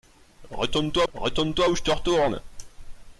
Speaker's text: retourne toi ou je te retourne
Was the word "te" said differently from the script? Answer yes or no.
no